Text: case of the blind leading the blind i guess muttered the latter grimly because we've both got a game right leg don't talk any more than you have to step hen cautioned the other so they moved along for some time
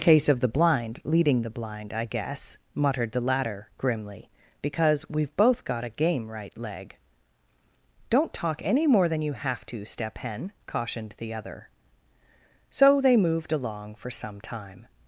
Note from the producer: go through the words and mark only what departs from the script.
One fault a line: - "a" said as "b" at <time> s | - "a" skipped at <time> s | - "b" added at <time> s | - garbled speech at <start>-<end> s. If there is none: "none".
none